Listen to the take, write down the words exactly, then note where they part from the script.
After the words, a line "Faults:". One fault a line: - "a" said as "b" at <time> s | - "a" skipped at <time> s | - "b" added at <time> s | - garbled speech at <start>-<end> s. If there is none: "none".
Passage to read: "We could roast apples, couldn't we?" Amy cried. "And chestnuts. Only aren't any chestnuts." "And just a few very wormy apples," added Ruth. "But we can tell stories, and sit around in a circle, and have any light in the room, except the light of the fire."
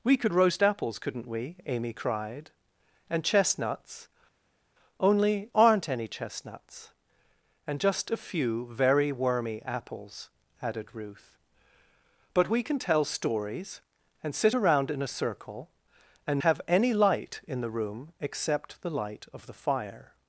"We could roast apples, couldn't we?" Amy cried. "And chestnuts. Only aren't any chestnuts." "And just a few very wormy apples," added Ruth. "But we can tell stories, and sit around in a circle, and have any light in the room, except the light of the fire."
Faults:
none